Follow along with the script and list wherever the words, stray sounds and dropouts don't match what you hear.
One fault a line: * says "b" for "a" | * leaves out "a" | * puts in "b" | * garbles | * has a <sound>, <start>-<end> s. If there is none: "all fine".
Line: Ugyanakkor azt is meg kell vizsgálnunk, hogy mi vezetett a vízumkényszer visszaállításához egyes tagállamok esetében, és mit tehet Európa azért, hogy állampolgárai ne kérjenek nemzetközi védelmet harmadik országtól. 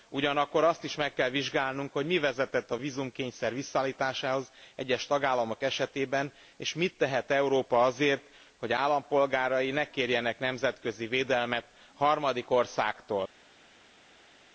all fine